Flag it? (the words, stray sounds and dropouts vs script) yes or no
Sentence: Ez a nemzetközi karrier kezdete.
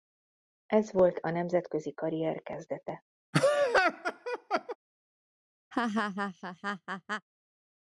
yes